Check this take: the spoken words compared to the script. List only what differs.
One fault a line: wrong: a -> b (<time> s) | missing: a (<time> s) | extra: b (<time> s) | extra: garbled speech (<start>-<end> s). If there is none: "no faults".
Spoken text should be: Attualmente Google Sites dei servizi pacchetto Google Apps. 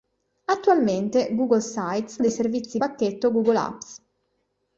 no faults